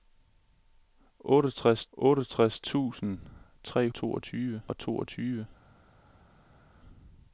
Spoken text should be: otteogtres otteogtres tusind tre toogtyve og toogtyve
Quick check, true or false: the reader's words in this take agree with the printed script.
true